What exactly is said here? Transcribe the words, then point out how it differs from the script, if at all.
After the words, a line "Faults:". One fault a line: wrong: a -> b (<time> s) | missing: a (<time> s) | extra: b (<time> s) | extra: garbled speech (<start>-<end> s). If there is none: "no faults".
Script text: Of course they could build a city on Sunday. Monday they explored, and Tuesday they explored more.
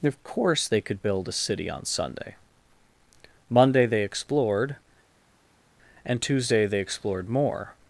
Of course they could build a city on Sunday. Monday they explored, and Tuesday they explored more.
Faults:
no faults